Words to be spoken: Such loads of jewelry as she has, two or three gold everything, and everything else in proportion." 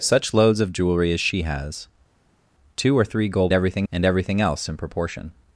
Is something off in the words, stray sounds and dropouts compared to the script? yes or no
no